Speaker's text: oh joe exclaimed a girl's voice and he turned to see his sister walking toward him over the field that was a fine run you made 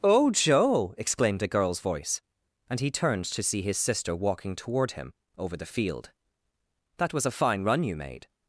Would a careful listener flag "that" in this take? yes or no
no